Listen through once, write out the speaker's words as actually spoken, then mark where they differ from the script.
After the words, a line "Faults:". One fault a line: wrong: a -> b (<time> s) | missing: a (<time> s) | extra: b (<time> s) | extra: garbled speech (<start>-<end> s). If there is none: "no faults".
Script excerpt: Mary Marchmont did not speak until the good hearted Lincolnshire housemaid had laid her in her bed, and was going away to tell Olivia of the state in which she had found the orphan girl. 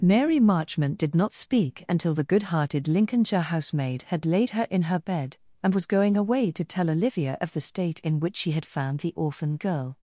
Mary Marchmont did not speak until the good hearted Lincolnshire housemaid had laid her in her bed, and was going away to tell Olivia of the state in which she had found the orphan girl.
Faults:
no faults